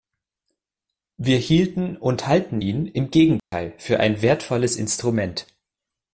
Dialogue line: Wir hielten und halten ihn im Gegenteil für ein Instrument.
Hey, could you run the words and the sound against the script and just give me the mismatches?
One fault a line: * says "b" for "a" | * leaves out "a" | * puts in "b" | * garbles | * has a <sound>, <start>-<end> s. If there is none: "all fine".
* has a dropout, 3.4-3.5 s
* puts in "wertvolles"